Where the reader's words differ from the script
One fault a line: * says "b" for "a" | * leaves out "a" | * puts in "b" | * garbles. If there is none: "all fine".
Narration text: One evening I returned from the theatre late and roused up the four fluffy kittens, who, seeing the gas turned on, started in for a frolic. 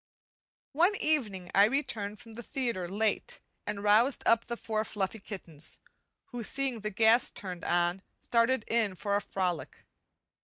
all fine